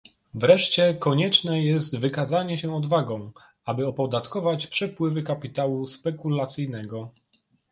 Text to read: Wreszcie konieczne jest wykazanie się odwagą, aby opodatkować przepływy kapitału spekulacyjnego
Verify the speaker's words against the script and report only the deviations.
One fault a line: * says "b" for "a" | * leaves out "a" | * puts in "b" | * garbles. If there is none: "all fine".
all fine